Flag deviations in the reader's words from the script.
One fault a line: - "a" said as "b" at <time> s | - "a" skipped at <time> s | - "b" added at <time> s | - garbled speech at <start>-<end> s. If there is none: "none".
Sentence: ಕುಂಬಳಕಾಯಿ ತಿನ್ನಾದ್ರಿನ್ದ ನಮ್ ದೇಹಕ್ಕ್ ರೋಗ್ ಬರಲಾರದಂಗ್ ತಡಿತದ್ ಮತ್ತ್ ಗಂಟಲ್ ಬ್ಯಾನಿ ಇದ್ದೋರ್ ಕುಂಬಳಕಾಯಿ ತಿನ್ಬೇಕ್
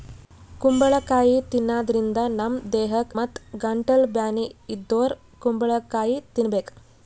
- "ರೋಗ್ ಬರಲಾರದಂಗ್ ತಡಿತದ್" skipped at 3.1 s